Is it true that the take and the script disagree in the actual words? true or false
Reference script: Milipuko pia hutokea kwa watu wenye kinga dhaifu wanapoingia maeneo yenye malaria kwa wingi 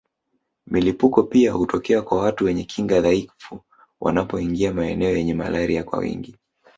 false